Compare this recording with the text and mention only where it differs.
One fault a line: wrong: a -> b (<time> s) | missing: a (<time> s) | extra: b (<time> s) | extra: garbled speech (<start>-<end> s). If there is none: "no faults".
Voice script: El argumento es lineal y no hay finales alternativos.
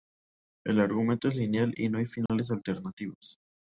no faults